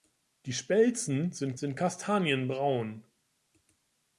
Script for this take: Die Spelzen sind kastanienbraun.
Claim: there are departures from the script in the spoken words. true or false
true